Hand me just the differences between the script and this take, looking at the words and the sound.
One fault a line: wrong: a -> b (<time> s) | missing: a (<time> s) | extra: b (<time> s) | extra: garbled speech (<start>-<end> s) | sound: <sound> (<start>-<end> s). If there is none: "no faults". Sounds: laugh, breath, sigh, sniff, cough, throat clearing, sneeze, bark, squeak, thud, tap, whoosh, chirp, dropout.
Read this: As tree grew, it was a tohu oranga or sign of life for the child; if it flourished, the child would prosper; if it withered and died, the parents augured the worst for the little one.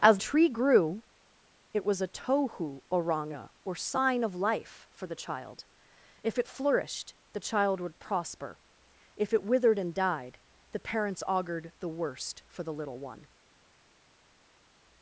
no faults